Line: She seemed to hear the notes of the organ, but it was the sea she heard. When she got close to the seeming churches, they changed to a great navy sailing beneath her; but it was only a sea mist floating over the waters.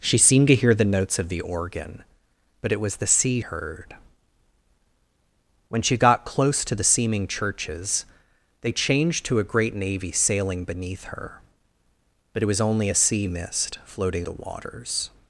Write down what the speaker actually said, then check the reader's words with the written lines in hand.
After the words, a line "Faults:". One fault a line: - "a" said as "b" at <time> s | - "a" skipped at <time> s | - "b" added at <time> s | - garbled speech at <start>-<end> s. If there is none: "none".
She seemed to hear the notes of the organ, but it was the sea heard. When she got close to the seeming churches, they changed to a great navy sailing beneath her; but it was only a sea mist floating the waters.
Faults:
- "she" skipped at 3.4 s
- "over" skipped at 14.3 s